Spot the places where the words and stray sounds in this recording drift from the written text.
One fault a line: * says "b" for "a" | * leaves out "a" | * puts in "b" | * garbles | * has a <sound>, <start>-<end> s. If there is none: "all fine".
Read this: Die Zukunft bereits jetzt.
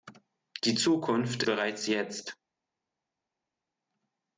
all fine